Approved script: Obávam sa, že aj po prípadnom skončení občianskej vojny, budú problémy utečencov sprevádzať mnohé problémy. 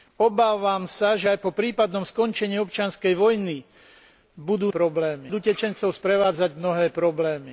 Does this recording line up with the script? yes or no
yes